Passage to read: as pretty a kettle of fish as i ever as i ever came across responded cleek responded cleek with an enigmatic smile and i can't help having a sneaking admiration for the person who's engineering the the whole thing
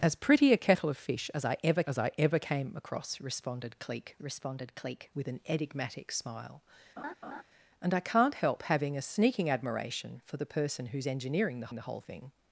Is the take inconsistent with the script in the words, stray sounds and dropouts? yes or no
yes